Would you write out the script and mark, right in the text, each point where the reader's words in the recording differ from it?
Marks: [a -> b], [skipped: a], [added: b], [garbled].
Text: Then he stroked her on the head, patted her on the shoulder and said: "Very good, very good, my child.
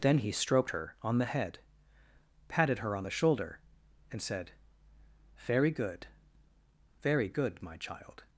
Then he stroked her on the head, patted her on the shoulder and said: "Very good, very good, my child.